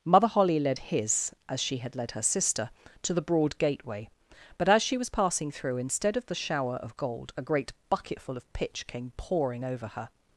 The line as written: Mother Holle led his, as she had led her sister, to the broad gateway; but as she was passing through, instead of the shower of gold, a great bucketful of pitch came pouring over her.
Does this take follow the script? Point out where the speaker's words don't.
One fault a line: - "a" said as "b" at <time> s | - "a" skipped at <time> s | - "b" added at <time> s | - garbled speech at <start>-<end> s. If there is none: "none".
none